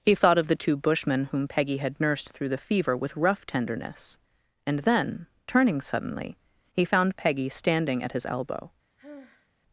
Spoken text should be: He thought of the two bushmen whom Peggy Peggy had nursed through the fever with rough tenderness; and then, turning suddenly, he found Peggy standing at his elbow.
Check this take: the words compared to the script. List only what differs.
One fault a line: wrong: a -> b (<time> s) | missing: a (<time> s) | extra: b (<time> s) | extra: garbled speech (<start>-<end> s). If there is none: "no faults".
missing: Peggy (1.8 s)